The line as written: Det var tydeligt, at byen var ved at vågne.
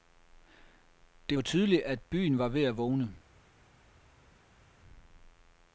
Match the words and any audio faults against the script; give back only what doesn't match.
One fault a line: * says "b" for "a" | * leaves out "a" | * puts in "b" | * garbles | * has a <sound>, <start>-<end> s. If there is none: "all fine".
all fine